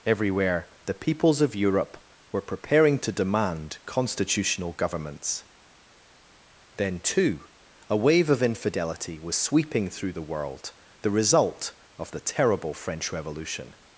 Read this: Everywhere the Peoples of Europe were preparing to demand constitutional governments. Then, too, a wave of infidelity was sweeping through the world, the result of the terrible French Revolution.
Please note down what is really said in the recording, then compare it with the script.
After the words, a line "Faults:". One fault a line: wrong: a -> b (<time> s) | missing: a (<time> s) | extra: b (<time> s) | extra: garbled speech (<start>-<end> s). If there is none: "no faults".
Everywhere the Peoples of Europe were preparing to demand constitutional governments. Then, too, a wave of infidelity was sweeping through the world, the result of the terrible French Revolution.
Faults:
no faults